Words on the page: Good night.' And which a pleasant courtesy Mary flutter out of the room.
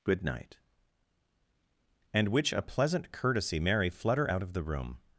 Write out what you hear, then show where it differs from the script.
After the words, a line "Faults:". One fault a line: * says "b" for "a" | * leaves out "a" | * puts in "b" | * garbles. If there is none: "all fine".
Good night.' And which a pleasant courtesy Mary flutter out of the room.
Faults:
all fine